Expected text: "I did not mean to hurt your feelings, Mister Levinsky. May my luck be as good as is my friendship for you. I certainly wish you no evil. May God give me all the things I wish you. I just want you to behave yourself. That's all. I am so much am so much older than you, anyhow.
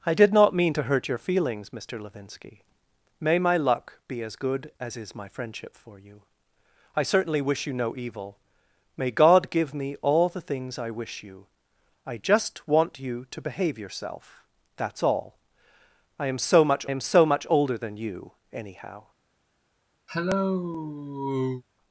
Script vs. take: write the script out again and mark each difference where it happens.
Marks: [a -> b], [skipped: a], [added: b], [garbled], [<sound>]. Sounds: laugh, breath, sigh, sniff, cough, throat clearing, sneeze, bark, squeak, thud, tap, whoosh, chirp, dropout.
"I did not mean to hurt your feelings, Mister Levinsky. May my luck be as good as is my friendship for you. I certainly wish you no evil. May God give me all the things I wish you. I just want you to behave yourself. That's all. I am so much am so much older than you, anyhow. [cough]